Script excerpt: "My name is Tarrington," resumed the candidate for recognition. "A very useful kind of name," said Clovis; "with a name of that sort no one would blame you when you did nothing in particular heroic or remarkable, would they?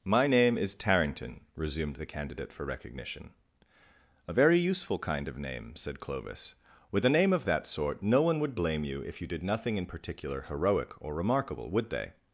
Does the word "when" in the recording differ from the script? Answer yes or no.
yes